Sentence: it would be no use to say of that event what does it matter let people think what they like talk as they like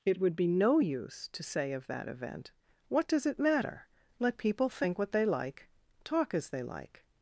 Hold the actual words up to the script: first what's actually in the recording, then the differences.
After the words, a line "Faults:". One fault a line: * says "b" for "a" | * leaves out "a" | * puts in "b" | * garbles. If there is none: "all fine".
it would be no use to say of that event what does it matter let people think what they like talk as they like
Faults:
all fine